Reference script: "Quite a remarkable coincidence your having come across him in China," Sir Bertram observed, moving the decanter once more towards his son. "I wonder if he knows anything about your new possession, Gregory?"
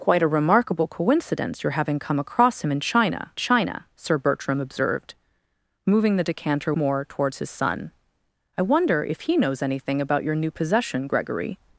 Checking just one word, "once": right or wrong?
wrong